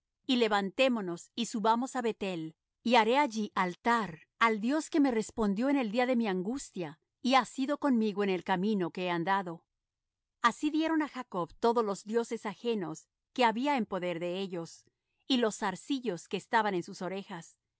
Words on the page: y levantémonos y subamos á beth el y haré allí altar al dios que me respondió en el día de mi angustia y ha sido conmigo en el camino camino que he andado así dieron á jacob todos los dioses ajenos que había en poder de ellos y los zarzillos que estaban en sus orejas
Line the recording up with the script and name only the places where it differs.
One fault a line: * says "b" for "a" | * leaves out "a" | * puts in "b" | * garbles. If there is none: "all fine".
* leaves out "camino"